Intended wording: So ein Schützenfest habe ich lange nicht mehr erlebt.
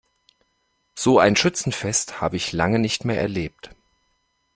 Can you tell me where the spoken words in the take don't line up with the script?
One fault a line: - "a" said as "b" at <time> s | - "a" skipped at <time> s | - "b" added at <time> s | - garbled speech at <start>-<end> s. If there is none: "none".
none